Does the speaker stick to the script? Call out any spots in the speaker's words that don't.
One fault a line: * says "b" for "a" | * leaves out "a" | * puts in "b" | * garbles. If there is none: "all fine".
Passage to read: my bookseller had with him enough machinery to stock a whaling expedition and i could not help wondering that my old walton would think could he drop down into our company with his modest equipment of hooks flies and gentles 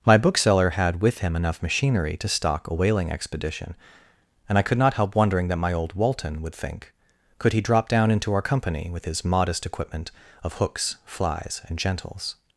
all fine